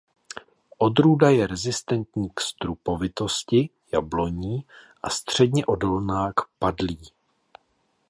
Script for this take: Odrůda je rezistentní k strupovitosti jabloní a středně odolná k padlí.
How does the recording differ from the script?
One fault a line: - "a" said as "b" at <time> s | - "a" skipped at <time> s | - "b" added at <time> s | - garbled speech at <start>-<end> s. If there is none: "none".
none